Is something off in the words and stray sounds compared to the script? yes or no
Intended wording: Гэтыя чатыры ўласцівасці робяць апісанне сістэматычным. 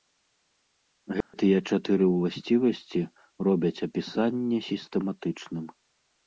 yes